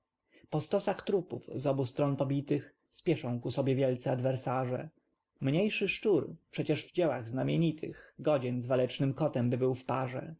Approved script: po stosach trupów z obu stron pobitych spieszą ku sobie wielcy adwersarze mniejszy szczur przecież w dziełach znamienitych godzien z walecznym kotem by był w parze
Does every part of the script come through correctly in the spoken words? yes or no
yes